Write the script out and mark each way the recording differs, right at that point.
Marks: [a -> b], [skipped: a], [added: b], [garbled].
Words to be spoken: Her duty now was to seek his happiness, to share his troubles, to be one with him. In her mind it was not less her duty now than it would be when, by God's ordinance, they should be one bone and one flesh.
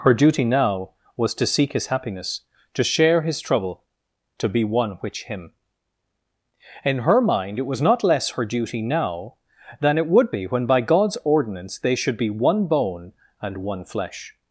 Her duty now was to seek his happiness, to share his [troubles, -> trouble] to be one [with -> which] him. In her mind it was not less her duty now than it would be when, by God's ordinance, they should be one bone and one flesh.